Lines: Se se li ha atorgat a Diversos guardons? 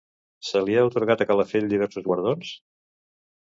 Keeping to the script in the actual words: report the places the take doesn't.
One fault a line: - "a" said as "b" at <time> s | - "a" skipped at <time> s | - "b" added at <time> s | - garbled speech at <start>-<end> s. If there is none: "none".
- "se" skipped at 0.6 s
- "Calafell" added at 1.3 s